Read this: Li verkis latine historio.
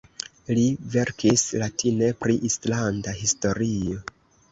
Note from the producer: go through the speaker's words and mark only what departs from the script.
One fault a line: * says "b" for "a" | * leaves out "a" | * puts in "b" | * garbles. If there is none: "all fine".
* puts in "pri islanda"